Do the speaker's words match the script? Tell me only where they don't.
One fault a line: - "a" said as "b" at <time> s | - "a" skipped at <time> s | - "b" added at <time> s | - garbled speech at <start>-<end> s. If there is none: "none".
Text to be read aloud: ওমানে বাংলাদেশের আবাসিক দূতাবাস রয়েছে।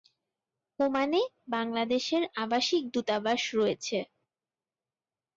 none